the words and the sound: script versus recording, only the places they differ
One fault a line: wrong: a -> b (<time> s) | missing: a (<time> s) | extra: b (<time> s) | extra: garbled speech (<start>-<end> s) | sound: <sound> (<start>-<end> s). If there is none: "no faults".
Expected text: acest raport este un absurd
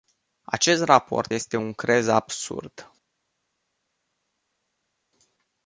extra: crez (1.7 s)